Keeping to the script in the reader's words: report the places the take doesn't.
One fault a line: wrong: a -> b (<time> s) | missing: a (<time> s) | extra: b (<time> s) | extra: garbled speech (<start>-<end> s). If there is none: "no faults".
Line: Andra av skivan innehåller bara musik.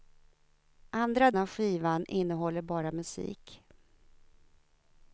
no faults